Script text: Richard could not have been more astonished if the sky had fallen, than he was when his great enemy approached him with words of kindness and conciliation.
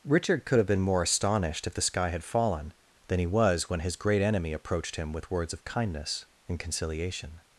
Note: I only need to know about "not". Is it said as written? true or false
false